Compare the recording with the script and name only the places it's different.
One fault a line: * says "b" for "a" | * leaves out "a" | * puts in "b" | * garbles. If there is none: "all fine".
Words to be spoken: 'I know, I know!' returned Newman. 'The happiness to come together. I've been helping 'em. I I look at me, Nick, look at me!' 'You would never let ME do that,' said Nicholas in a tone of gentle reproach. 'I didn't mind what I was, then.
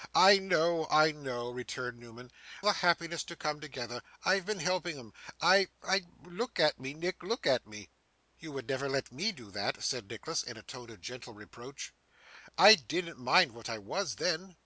all fine